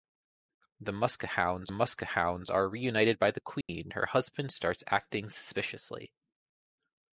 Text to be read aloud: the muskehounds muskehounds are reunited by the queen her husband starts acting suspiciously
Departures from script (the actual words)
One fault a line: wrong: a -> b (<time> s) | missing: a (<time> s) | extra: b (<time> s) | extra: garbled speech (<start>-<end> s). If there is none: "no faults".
no faults